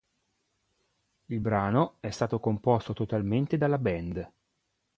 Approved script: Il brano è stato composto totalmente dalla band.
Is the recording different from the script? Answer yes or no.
no